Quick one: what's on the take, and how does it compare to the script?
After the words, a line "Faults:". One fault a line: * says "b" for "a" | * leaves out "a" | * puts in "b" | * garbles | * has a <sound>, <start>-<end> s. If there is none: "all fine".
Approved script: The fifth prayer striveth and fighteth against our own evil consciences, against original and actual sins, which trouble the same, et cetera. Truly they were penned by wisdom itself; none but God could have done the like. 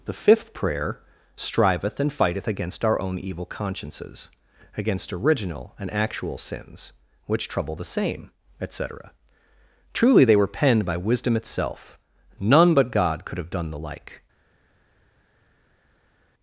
The fifth prayer striveth and fighteth against our own evil consciences, against original and actual sins, which trouble the same, et cetera. Truly they were penned by wisdom itself; none but God could have done the like.
Faults:
all fine